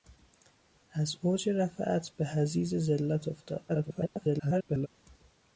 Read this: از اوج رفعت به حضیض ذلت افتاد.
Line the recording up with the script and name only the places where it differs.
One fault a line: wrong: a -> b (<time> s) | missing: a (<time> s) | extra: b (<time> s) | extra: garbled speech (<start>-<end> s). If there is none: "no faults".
extra: garbled speech (3.7-4.9 s)